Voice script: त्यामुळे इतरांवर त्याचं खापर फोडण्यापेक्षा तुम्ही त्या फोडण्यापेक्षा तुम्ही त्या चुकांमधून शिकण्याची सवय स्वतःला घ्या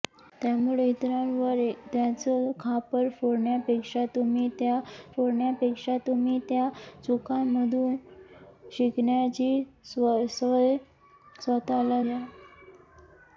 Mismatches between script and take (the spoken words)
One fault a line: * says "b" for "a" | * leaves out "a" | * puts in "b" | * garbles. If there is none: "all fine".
all fine